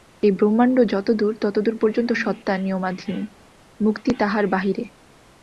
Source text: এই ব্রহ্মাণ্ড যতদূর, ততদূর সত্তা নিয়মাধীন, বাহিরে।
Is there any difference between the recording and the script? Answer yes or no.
yes